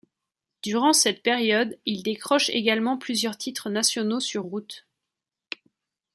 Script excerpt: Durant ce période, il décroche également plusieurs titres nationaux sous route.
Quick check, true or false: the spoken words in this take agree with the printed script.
false